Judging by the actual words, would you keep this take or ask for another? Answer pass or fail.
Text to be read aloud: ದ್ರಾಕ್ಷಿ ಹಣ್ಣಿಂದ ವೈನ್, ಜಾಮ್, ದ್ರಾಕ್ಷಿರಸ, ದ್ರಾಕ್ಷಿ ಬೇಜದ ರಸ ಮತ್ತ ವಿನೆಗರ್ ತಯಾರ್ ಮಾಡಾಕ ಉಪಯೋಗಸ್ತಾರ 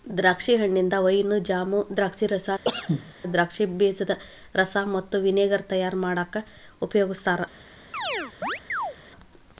pass